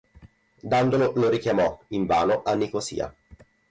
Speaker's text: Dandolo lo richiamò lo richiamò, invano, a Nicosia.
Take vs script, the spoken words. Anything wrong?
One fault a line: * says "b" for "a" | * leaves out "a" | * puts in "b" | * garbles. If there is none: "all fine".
* leaves out "lo richiamò"